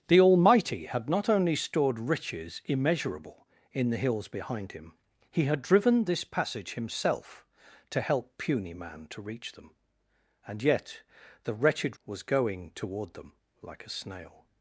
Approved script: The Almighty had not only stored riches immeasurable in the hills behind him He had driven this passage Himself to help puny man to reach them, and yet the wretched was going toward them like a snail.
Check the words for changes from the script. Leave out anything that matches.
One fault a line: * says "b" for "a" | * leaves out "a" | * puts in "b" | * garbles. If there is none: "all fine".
all fine